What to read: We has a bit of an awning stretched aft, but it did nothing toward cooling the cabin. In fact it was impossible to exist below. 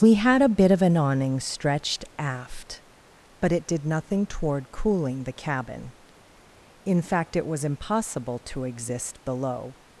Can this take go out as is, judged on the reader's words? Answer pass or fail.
fail